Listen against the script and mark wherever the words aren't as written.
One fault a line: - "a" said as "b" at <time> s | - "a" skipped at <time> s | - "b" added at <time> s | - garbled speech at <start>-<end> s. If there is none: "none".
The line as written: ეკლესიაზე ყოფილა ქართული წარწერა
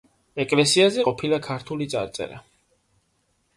none